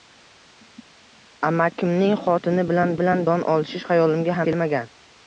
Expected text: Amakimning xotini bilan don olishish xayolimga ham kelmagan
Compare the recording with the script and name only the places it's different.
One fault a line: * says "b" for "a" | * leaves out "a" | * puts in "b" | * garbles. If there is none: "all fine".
* puts in "bilan"
* leaves out "ham"